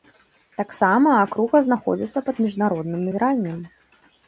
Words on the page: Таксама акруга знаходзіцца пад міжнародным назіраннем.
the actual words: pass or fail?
pass